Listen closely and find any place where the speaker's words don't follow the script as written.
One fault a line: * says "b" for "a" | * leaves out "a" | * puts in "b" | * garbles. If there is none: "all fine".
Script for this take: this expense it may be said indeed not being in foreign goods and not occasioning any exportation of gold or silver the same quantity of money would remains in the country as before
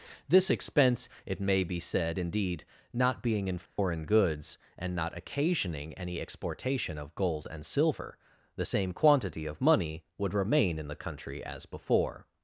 * says "and" for "or"
* says "remain" for "remains"